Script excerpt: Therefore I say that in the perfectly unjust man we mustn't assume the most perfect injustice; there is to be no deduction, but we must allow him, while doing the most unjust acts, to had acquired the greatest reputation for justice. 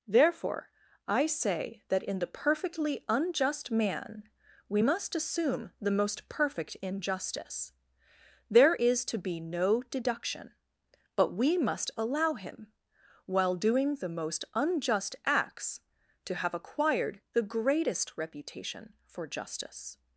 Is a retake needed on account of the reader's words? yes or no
yes